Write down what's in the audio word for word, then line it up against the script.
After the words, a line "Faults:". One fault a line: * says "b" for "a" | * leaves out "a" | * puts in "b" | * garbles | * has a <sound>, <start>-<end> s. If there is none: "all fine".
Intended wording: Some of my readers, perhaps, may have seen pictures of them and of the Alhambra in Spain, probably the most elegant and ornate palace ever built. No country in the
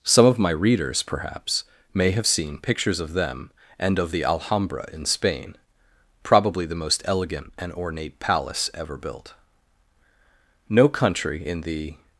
Some of my readers, perhaps, may have seen pictures of them and of the Alhambra in Spain, probably the most elegant and ornate palace ever built. No country in the
Faults:
all fine